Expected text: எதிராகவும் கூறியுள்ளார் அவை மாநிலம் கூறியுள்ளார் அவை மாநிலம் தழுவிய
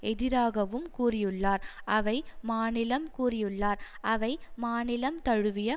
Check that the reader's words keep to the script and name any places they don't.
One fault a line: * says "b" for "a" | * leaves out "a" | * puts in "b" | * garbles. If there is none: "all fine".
all fine